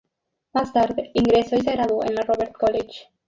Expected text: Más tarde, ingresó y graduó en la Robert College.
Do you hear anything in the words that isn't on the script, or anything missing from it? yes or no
yes